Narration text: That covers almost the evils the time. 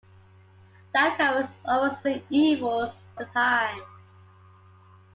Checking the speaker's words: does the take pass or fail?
pass